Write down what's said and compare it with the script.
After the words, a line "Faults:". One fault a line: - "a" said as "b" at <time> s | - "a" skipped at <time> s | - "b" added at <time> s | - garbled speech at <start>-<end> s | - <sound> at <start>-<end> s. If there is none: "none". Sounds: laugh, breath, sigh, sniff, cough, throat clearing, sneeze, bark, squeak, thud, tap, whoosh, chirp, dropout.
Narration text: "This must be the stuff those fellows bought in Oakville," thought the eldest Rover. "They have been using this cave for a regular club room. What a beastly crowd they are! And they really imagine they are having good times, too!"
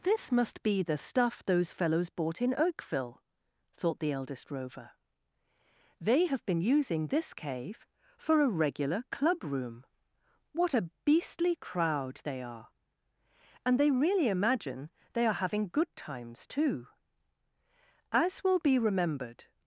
"This must be the stuff those fellows bought in Oakville," thought the eldest Rover. "They have been using this cave for a regular club room. What a beastly crowd they are! And they really imagine they are having good times, too!" As will be remembered
Faults:
- "As will be remembered" added at 18.1 s